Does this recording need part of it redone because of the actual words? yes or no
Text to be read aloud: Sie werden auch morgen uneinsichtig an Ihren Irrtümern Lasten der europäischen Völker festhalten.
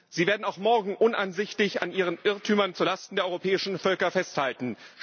yes